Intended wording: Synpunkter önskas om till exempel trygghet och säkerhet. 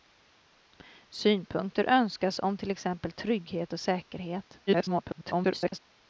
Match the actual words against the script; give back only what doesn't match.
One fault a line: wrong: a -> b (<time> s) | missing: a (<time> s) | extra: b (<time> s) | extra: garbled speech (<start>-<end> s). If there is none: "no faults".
extra: garbled speech (4.7-5.8 s)